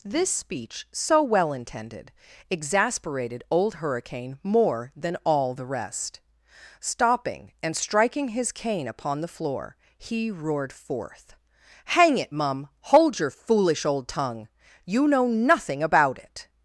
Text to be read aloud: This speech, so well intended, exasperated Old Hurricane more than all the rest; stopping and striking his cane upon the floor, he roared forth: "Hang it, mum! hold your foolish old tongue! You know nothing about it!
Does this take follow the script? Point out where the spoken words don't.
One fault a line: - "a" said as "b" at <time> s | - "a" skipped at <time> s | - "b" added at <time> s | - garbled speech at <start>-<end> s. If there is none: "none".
none